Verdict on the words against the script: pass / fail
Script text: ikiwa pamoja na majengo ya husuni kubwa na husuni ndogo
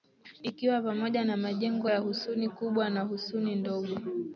pass